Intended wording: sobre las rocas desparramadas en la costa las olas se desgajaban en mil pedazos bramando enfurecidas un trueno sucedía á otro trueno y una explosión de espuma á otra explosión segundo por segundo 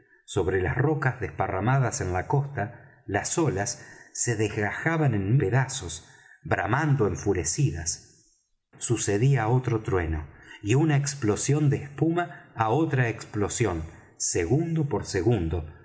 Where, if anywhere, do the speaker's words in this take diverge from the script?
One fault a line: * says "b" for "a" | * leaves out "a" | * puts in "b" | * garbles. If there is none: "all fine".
* leaves out "mil"
* leaves out "un trueno"